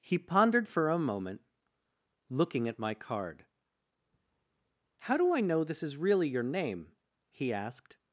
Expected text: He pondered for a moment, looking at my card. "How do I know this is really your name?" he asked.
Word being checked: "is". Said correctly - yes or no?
yes